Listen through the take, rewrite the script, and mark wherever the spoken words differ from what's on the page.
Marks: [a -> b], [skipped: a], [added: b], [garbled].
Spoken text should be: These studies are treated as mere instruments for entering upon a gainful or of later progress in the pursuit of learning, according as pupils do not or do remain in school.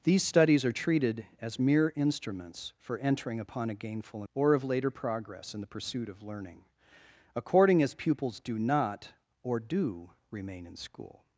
These studies are treated as mere instruments for entering upon a gainful or of later progress in the pursuit of learning, according as pupils do not or do remain in school.